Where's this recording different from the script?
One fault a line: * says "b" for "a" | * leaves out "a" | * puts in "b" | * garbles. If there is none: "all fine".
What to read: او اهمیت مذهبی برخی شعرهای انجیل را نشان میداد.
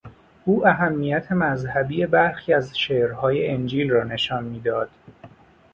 * puts in "از"